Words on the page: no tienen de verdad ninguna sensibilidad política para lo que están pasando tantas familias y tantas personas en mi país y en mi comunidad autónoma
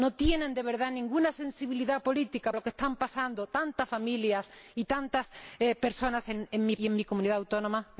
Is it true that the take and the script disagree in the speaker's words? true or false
true